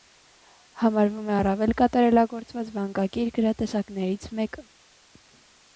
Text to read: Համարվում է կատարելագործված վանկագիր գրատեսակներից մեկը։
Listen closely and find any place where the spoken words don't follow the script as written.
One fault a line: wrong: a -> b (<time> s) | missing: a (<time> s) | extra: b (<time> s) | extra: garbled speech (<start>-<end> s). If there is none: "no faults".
extra: առավել (1.4 s)